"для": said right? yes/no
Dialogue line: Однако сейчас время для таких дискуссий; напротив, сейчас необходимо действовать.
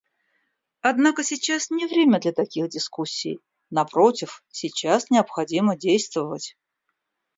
yes